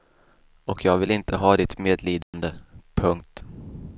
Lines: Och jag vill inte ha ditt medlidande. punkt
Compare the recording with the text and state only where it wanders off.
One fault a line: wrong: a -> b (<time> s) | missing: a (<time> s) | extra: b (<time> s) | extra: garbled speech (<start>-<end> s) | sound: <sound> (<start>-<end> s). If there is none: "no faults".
sound: dropout (2.2-2.3 s)